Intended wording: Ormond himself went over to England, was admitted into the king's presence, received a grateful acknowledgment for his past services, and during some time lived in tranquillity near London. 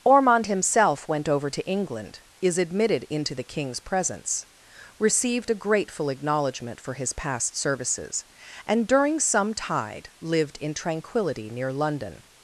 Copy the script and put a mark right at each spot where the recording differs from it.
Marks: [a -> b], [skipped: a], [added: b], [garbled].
Ormond himself went over to England, [was -> is] admitted into the king's presence, received a grateful acknowledgment for his past services, and during some [time -> tide] lived in tranquillity near London.